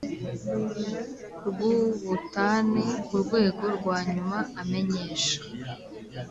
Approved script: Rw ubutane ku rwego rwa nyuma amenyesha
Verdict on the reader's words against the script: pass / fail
pass